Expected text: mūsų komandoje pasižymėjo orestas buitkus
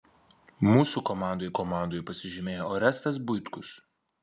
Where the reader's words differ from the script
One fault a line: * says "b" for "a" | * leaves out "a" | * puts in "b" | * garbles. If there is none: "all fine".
* puts in "komandoje"